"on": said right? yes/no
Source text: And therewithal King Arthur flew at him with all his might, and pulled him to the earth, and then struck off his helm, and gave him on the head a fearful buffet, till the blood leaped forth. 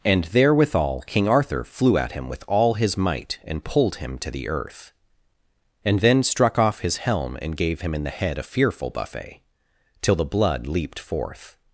no